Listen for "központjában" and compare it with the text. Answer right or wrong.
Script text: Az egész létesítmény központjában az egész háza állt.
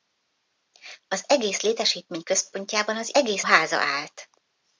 right